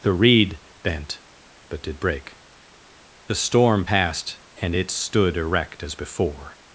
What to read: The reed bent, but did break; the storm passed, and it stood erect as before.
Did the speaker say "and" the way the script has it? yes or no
yes